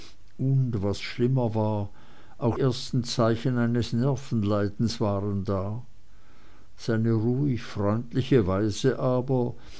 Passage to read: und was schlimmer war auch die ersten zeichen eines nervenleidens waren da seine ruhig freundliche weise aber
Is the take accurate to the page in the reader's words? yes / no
no